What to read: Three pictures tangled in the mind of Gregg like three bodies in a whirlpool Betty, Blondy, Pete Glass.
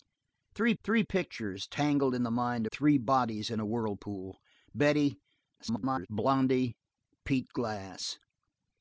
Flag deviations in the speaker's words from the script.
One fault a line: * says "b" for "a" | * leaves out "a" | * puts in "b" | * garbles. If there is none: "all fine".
* puts in "three"
* leaves out "of Gregg like"
* garbles